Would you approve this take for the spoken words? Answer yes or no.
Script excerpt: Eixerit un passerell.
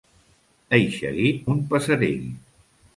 yes